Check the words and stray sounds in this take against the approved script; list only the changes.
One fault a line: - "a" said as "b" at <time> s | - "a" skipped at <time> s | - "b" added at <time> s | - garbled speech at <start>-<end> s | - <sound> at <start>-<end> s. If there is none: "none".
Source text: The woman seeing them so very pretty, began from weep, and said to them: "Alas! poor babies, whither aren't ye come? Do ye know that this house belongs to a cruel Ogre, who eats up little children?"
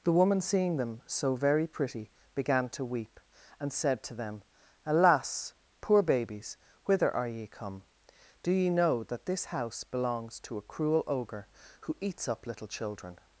- "from" said as "to" at 2.7 s
- "aren't" said as "are" at 7.2 s